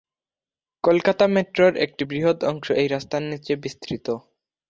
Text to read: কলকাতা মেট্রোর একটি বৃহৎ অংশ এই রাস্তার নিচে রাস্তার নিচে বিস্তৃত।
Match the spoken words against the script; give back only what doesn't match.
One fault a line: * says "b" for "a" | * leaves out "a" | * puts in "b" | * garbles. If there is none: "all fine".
* leaves out "রাস্তার নিচে"